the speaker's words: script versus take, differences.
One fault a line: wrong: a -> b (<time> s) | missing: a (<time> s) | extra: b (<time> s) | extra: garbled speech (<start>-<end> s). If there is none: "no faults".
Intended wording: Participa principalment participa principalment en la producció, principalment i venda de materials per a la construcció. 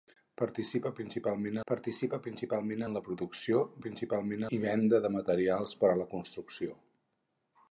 no faults